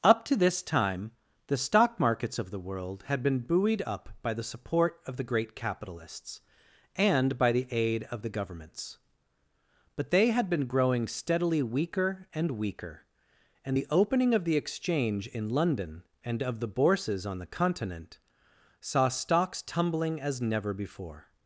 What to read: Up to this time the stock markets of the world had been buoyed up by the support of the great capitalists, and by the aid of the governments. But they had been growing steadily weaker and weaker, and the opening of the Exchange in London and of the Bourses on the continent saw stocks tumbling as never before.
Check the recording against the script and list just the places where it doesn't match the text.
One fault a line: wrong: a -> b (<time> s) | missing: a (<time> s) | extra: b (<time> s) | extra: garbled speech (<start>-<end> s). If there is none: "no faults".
no faults